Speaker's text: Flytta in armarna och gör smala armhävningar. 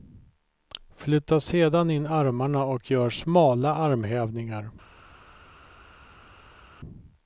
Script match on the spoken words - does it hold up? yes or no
no